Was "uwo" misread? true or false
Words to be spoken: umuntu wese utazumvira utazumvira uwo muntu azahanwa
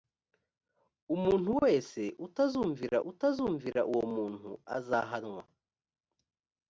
false